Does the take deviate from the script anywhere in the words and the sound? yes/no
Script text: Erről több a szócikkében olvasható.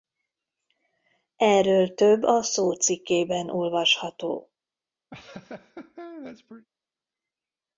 yes